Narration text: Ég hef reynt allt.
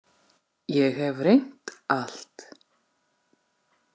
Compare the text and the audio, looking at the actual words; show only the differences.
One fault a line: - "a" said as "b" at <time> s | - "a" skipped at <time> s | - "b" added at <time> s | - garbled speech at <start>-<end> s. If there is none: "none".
none